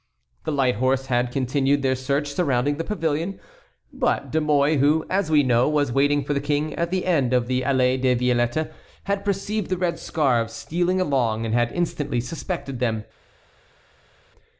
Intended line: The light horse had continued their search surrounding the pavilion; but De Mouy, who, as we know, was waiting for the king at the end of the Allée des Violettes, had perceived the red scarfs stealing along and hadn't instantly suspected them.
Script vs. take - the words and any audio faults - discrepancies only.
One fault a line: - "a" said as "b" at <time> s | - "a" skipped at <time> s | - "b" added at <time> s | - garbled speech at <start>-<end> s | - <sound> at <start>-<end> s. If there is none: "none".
- "hadn't" said as "had" at 11.5 s